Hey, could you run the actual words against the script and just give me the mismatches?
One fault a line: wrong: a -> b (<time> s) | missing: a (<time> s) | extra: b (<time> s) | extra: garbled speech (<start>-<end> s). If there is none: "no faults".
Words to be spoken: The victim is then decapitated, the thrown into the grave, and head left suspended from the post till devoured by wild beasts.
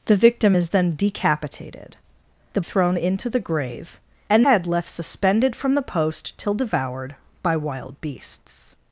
no faults